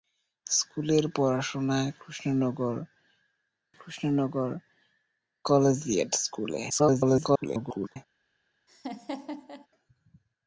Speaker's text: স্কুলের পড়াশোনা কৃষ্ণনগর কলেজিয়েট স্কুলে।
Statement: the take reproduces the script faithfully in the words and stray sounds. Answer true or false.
false